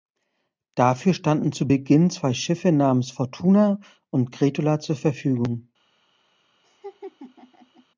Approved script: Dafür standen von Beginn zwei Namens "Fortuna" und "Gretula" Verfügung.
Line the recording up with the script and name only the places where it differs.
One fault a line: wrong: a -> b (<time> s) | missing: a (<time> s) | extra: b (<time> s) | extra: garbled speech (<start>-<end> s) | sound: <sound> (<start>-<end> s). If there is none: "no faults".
wrong: von -> zu (1.5 s)
extra: Schiffe (2.3 s)
extra: zur (4.8 s)
sound: laugh (6.6-7.9 s)